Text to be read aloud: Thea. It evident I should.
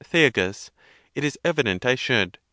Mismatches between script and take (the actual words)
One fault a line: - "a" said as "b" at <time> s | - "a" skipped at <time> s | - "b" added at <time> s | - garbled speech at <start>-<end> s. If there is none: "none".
- "is" added at 1.2 s